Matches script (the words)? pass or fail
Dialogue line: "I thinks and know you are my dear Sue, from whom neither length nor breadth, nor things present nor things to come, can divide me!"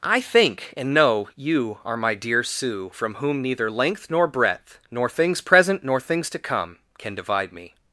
fail